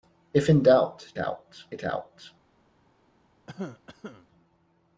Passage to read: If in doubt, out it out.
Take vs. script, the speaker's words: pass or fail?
pass